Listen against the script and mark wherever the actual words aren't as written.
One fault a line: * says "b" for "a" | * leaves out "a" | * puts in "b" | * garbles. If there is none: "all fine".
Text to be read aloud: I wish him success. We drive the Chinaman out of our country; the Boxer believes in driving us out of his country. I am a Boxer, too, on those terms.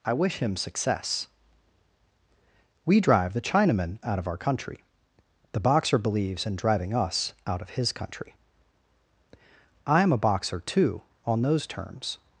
all fine